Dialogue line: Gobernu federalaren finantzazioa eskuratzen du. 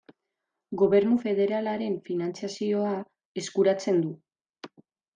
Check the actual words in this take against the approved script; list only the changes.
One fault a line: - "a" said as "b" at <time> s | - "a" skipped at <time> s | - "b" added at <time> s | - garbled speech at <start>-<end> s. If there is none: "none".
none